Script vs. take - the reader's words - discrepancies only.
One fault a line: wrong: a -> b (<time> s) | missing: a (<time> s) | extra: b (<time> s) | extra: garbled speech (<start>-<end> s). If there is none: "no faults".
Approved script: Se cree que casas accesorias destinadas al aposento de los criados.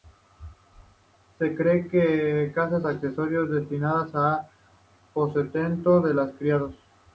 no faults